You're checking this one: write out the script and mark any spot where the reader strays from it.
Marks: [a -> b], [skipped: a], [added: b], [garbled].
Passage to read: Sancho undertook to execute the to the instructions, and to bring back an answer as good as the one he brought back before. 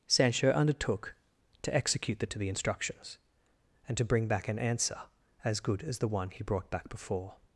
Sancho undertook to execute the to the instructions, and to bring back an answer as good as the one he brought back before.